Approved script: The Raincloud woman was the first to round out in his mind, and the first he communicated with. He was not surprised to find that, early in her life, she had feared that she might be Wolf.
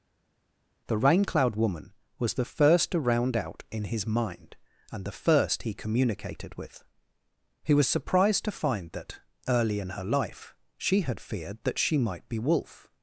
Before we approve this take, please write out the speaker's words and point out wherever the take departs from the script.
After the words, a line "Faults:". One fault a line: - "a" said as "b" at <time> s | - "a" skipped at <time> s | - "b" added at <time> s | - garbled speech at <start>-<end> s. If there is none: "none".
The Raincloud woman was the first to round out in his mind, and the first he communicated with. He was surprised to find that, early in her life, she had feared that she might be Wolf.
Faults:
- "not" skipped at 7.9 s